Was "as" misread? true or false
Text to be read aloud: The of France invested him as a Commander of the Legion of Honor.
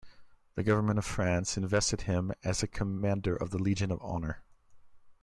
false